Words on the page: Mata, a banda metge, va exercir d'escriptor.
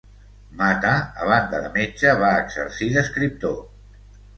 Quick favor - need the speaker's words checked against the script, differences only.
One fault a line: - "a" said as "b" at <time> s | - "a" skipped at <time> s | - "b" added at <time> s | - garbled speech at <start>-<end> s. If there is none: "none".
- "de" added at 1.6 s